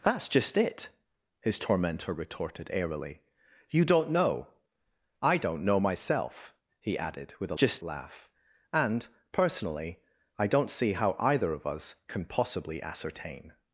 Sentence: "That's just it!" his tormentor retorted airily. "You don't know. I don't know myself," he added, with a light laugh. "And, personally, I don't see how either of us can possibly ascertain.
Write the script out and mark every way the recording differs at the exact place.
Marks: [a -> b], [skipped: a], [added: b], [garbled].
"That's just it!" his tormentor retorted airily. "You don't know. I don't know myself," he added, with a [light -> just] laugh. "And, personally, I don't see how either of us can possibly ascertain.